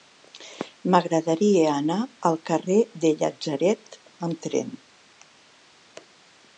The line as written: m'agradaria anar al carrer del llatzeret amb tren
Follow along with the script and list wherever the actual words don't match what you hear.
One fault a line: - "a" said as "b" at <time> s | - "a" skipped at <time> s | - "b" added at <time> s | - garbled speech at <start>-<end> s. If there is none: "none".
none